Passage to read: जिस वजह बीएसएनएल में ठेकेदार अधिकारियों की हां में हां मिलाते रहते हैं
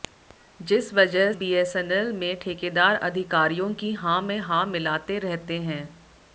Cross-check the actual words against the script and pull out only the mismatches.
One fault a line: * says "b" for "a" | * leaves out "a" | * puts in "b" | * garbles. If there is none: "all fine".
all fine